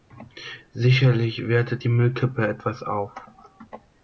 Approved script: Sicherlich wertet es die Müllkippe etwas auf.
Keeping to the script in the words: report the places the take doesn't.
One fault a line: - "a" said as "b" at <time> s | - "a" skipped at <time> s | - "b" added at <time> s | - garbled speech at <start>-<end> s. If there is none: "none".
- "es" skipped at 1.8 s